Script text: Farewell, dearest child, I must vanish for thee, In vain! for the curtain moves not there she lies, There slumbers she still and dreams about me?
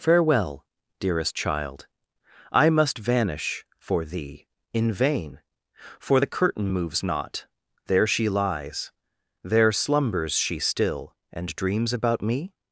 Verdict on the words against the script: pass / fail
pass